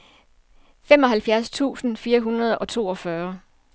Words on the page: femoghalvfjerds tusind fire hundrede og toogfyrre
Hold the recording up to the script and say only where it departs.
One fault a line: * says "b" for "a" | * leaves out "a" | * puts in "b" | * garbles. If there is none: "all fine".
all fine